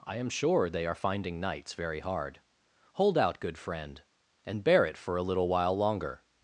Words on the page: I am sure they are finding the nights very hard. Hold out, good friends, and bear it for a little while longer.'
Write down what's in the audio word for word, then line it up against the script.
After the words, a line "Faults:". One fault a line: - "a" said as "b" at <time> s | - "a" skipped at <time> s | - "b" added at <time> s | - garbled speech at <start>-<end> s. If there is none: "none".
I am sure they are finding nights very hard. Hold out, good friend, and bear it for a little while longer.'
Faults:
- "the" skipped at 1.4 s
- "friends" said as "friend" at 3.6 s